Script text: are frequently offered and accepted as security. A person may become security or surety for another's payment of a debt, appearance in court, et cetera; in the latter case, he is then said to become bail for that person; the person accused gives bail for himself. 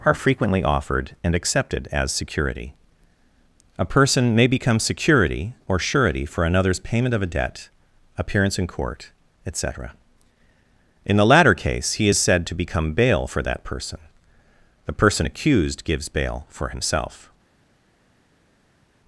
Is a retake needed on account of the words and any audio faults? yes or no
yes